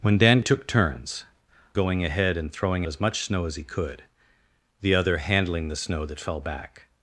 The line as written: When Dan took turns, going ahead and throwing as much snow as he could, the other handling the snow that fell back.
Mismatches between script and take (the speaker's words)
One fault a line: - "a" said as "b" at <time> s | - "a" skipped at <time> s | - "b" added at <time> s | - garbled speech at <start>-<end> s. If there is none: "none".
none